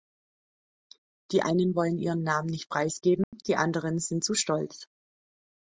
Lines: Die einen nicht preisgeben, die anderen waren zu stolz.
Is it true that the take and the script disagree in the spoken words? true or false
true